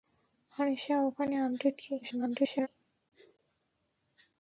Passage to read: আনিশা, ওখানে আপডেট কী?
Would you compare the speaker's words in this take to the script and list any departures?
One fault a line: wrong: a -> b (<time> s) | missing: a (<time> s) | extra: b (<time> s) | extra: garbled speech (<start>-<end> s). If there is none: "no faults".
extra: garbled speech (2.0-2.7 s)